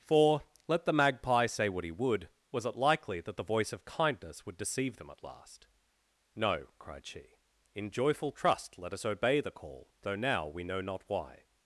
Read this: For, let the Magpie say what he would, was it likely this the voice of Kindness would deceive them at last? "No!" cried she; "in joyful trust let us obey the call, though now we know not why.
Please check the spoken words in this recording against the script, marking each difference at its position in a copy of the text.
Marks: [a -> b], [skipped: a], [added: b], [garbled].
For, let the Magpie say what he would, was it likely [this -> that] the voice of Kindness would deceive them at last? "No!" cried she; "in joyful trust let us obey the call, though now we know not why.